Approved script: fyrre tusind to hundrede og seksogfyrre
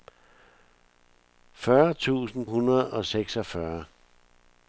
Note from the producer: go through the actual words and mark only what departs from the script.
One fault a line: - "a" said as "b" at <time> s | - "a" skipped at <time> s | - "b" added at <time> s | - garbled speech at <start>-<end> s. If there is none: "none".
- "to" skipped at 2.5 s